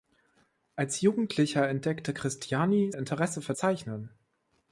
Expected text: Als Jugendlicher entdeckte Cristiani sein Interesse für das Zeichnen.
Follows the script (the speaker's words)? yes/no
no